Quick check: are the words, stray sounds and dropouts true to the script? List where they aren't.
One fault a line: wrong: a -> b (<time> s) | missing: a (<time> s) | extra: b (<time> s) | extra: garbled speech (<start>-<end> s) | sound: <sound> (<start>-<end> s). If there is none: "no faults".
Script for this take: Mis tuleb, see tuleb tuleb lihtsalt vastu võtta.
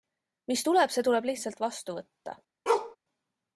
missing: tuleb (1.3 s)
sound: bark (2.7-3.0 s)